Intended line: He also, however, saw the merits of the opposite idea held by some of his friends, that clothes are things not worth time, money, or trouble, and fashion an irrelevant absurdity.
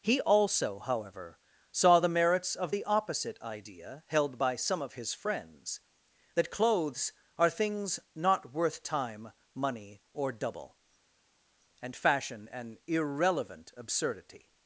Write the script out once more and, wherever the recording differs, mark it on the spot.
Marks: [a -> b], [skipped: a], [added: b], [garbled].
He also, however, saw the merits of the opposite idea held by some of his friends, that clothes are things not worth time, money, or [trouble, -> double] and fashion an irrelevant absurdity.